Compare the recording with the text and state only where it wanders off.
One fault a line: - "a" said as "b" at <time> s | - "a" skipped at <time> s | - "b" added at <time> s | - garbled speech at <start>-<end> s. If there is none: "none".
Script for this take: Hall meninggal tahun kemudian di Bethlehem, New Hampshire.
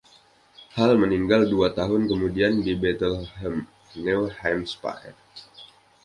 - "dua" added at 1.4 s